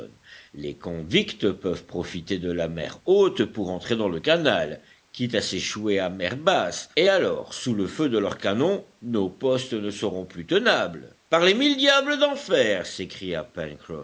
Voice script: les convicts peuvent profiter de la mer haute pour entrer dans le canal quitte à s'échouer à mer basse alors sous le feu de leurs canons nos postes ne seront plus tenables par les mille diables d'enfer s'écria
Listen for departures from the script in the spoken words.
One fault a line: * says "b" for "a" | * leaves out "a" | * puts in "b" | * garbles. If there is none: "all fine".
* puts in "et"